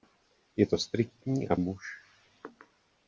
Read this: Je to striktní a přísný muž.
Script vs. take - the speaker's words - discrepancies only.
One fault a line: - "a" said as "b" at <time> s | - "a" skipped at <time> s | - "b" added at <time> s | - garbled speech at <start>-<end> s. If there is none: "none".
- "přísný" skipped at 1.6 s